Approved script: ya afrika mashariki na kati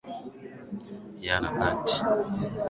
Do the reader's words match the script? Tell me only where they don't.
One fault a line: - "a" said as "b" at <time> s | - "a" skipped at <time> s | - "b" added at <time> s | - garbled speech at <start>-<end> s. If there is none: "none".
- "afrika mashariki" skipped at 1.4 s